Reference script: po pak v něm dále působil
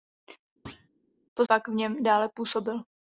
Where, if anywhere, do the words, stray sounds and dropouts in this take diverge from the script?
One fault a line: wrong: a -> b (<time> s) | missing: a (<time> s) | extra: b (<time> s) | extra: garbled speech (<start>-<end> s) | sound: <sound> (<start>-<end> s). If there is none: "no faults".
sound: thud (0.7-0.9 s)